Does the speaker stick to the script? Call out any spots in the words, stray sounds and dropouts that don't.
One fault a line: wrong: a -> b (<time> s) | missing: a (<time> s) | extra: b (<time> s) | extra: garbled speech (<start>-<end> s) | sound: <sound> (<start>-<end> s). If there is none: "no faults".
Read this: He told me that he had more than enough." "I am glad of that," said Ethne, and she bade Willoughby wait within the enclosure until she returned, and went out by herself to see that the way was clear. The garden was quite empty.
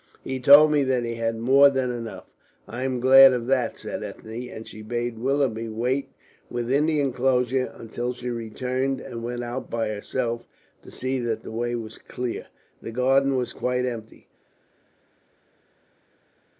no faults